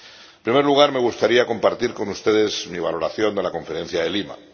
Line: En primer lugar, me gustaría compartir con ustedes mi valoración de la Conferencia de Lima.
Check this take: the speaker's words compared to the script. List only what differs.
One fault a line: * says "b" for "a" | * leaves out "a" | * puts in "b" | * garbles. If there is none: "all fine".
all fine